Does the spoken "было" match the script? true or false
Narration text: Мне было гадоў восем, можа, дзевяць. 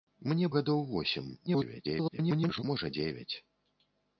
false